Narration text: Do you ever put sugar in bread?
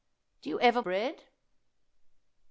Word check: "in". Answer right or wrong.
wrong